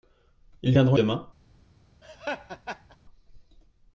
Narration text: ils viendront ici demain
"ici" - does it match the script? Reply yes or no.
no